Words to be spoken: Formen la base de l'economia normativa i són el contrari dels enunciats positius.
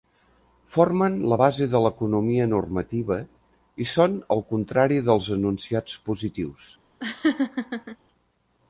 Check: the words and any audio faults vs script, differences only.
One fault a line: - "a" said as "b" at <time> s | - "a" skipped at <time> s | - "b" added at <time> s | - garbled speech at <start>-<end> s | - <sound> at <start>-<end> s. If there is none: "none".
- laugh at 7.0-8.0 s